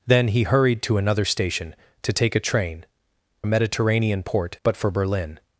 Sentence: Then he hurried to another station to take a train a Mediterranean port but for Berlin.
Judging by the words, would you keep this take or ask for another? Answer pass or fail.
pass